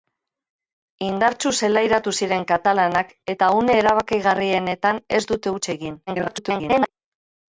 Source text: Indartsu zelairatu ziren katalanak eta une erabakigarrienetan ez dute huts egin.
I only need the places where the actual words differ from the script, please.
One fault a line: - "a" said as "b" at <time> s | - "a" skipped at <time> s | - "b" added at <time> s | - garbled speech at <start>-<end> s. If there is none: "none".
- garbled speech at 6.1-6.9 s